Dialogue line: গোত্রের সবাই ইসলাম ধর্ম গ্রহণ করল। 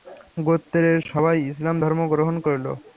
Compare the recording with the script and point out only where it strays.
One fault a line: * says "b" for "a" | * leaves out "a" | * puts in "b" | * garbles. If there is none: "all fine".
all fine